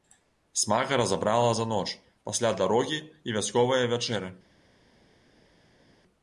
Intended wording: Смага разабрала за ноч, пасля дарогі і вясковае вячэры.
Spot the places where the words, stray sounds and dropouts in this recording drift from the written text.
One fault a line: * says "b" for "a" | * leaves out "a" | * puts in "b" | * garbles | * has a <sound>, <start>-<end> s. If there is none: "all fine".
all fine